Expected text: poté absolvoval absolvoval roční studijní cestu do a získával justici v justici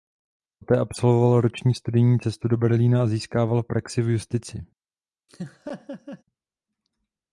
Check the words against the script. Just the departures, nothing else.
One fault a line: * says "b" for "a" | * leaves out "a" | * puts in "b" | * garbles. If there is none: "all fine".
* leaves out "absolvoval"
* puts in "berlína"
* says "praxi" for "justici"